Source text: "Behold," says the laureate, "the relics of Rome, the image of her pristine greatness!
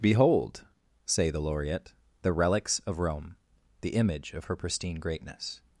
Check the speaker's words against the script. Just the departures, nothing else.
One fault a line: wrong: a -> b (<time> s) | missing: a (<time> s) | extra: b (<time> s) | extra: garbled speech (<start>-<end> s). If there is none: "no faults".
wrong: says -> say (1.1 s)